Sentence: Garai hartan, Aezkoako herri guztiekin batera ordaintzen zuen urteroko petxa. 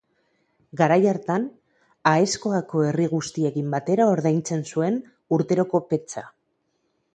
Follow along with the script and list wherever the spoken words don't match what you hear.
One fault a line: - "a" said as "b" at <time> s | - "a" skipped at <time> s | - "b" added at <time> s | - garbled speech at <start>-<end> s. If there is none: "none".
none